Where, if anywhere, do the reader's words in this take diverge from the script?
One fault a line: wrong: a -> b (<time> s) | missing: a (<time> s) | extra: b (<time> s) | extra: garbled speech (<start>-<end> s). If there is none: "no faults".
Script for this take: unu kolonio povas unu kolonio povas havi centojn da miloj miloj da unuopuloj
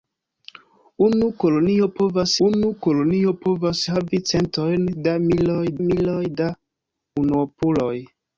no faults